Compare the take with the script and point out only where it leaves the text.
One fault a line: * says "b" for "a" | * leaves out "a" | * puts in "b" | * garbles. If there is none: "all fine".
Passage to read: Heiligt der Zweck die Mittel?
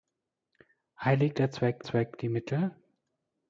* puts in "Zweck"